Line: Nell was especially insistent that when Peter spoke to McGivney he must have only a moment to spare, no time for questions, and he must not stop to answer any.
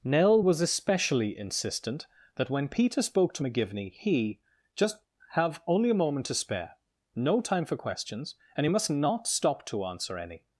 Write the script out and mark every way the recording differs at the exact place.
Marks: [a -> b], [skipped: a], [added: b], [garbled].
Nell was especially insistent that when Peter spoke to McGivney he [must -> just] have only a moment to spare, no time for questions, and he must not stop to answer any.